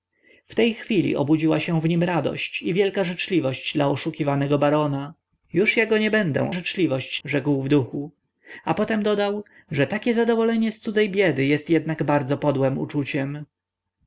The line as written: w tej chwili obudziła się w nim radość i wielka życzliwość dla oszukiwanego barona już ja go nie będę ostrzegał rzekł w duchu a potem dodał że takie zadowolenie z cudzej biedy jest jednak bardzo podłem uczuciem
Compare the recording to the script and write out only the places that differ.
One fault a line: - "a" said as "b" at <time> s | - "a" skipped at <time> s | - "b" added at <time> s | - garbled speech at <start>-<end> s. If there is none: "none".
- "ostrzegał" said as "życzliwość" at 6.5 s